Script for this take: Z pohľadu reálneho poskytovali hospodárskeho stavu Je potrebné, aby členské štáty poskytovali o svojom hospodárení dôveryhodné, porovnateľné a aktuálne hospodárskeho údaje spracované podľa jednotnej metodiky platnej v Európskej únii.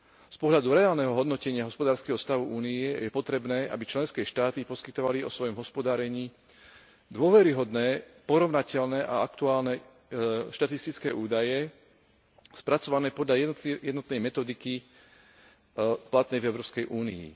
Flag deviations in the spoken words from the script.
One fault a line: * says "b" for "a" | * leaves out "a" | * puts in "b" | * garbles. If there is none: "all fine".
* says "hodnotenia" for "poskytovali"
* puts in "Únie"
* says "štatistické" for "hospodárskeho"